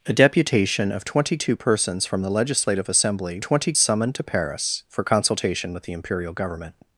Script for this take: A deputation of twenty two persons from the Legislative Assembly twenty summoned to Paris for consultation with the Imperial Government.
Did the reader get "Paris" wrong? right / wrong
right